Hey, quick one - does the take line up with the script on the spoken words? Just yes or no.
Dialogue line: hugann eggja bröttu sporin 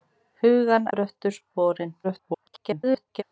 no